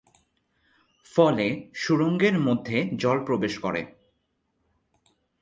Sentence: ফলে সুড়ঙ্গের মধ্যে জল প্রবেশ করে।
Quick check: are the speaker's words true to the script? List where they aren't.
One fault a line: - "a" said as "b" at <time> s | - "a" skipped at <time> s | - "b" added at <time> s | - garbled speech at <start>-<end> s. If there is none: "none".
none